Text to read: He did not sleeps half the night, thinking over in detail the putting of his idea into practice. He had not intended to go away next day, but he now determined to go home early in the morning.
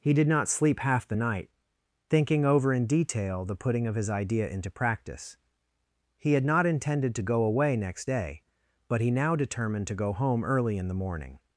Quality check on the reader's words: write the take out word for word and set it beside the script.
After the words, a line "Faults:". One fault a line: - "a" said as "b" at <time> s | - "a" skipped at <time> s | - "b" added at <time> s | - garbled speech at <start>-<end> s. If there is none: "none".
He did not sleep half the night, thinking over in detail the putting of his idea into practice. He had not intended to go away next day, but he now determined to go home early in the morning.
Faults:
- "sleeps" said as "sleep" at 0.5 s